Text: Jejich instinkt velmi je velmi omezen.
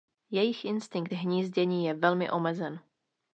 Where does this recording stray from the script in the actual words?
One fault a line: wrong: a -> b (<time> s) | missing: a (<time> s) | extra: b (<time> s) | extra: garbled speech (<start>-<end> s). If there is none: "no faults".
wrong: velmi -> hnízdění (1.1 s)